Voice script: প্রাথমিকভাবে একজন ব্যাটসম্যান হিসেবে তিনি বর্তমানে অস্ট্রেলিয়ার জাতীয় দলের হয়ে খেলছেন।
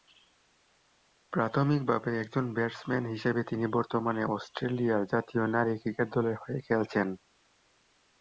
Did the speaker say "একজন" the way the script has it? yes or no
yes